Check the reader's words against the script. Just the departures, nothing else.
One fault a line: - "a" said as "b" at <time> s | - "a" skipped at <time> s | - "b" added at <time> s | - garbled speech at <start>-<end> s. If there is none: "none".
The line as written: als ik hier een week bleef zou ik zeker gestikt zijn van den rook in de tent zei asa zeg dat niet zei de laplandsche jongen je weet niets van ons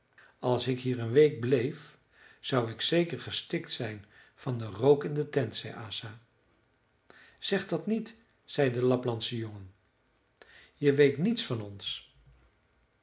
none